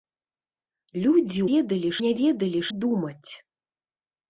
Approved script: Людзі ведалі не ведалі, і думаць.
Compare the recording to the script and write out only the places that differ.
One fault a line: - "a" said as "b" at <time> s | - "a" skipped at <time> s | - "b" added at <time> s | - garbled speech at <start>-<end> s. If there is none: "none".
none